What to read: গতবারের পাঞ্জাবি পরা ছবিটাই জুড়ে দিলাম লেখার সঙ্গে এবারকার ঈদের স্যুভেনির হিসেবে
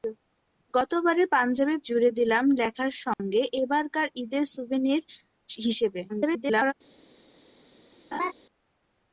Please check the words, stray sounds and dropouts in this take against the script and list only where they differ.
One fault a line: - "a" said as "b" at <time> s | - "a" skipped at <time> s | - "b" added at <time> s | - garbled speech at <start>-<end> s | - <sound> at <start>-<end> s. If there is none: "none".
- "পরা ছবিটাই" skipped at 1.8 s
- dropout at 3.1-3.2 s
- garbled speech at 6.1-6.7 s
- laugh at 8.1-8.3 s